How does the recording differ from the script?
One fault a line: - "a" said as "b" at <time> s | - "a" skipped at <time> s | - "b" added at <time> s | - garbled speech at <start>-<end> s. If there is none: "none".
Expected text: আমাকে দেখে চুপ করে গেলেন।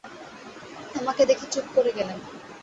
none